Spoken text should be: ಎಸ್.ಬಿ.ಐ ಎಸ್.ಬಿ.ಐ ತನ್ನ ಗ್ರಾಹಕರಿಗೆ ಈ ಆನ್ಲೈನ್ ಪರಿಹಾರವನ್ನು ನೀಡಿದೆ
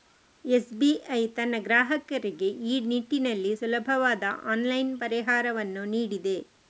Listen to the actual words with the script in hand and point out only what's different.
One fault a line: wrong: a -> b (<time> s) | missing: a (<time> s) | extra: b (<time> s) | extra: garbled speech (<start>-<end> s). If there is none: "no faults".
missing: ಎಸ್.ಬಿ.ಐ (1.2 s)
extra: ನಿಟ್ಟಿನಲ್ಲಿ ಸುಲಭವಾದ (2.9 s)